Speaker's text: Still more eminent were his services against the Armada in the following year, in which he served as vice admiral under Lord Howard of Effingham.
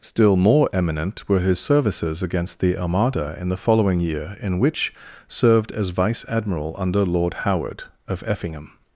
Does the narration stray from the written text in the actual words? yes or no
yes